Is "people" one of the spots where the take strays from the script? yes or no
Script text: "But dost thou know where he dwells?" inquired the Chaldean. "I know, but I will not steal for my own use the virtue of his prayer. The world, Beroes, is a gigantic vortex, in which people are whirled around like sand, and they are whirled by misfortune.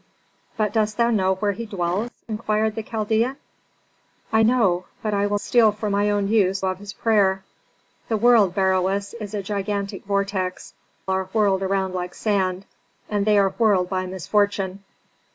yes